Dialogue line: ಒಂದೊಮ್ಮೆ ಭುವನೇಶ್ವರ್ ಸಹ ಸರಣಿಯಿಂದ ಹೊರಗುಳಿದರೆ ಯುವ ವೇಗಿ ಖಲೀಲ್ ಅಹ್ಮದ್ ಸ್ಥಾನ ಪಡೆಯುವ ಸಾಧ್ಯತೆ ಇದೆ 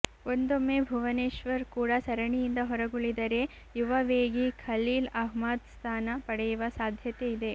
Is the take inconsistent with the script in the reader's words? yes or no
yes